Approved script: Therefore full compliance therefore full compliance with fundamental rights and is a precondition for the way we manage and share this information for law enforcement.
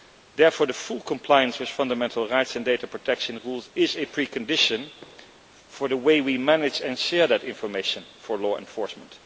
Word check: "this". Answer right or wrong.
wrong